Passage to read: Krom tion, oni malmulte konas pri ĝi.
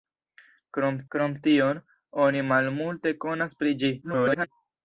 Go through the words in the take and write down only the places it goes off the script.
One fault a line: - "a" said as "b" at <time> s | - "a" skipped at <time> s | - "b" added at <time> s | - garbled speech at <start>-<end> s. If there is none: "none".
- "krom" added at 1.1 s
- garbled speech at 4.0-4.5 s